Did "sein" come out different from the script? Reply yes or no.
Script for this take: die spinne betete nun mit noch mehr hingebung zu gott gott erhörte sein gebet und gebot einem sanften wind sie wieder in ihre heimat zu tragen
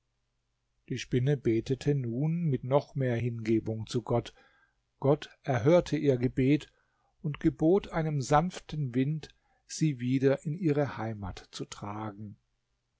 yes